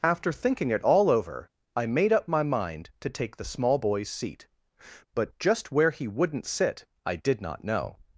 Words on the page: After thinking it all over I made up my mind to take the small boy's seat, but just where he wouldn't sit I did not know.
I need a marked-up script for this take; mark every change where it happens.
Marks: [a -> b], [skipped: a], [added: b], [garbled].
After thinking it all over I made up my mind to take the small boy's seat, but just where he wouldn't sit I did not know.